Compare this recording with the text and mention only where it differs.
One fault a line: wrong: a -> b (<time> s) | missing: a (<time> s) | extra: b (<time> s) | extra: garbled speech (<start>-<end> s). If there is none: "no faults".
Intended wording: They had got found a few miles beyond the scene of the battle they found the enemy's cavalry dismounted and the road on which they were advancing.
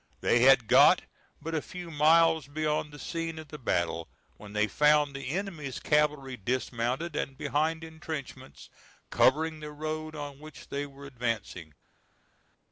wrong: found -> but (1.4 s)
extra: when (4.4 s)
extra: behind intrenchments covering (7.3 s)